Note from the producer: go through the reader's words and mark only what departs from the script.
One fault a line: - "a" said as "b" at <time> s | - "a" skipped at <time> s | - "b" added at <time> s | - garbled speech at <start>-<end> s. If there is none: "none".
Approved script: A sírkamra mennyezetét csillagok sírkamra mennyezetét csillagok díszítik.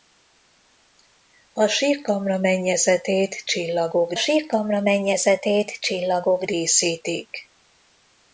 none